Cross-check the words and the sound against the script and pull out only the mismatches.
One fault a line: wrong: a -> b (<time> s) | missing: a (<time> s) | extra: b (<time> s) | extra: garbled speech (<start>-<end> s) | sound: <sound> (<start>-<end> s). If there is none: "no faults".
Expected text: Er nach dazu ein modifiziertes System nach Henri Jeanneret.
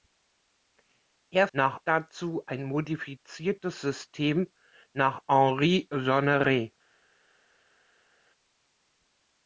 no faults